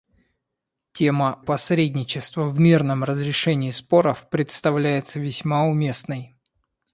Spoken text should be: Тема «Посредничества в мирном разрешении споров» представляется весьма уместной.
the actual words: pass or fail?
pass